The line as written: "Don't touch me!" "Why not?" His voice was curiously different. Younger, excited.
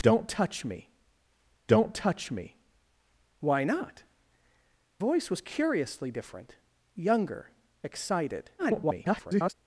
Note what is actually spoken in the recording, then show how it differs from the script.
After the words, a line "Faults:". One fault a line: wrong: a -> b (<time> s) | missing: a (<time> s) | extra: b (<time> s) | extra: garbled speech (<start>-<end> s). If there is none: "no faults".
"Don't touch me don't touch me!" "Why not?" Voice was curiously different. Younger, excited. [garbled]
Faults:
extra: don't touch me (1.7 s)
missing: His (4.0 s)
extra: garbled speech (8.6-9.5 s)